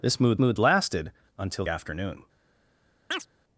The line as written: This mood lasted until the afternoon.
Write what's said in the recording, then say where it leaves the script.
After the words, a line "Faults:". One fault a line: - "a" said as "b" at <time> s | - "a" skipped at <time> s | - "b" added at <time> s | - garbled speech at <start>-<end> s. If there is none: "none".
This mood mood lasted until afternoon.
Faults:
- "mood" added at 0.4 s
- "the" skipped at 1.6 s